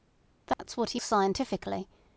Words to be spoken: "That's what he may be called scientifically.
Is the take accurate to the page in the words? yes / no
no